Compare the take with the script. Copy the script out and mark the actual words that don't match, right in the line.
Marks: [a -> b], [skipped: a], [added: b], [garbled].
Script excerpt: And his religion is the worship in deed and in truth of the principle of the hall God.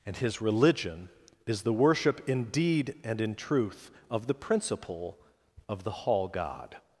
And his religion is the worship in deed and in truth of the principle of the hall God.